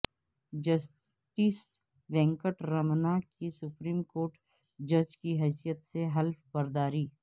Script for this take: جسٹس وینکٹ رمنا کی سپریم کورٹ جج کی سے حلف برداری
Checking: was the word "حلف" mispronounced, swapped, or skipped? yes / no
no